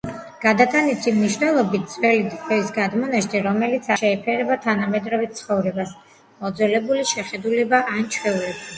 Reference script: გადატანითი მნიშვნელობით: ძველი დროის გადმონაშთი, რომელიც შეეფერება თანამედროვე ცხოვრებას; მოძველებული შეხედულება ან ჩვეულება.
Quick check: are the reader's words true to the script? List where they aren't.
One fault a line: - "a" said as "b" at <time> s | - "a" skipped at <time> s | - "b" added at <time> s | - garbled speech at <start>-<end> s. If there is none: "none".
none